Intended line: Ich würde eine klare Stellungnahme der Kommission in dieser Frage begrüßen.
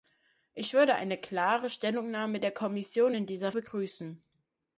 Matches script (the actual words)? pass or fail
fail